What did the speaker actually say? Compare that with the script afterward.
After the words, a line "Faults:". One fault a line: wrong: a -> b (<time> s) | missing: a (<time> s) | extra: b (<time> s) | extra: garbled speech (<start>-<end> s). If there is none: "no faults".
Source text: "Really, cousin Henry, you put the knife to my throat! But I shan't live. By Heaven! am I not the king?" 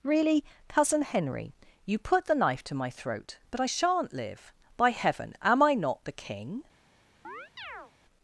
"Really, cousin Henry, you put the knife to my throat! But I shan't live. By Heaven! am I not the king?"
Faults:
no faults